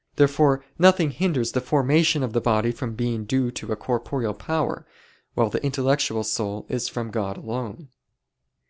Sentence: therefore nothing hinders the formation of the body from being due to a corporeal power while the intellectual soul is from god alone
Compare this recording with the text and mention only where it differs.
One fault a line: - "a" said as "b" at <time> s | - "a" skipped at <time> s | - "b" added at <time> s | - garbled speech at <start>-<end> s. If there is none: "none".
none